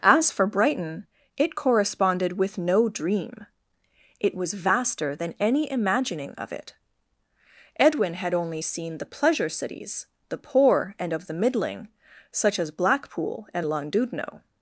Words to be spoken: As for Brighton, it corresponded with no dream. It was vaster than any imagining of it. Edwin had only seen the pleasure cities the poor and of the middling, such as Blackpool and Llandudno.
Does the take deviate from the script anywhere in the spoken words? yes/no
no